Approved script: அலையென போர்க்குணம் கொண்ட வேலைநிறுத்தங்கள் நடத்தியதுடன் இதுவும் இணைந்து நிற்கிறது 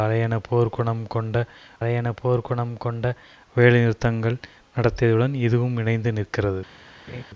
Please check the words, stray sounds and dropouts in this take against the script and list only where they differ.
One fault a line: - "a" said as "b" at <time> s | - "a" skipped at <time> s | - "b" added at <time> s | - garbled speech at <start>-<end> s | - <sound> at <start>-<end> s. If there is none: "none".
- "அலையென போர்க்குணம் கொண்ட" added at 1.8 s
- laugh at 7.1-7.2 s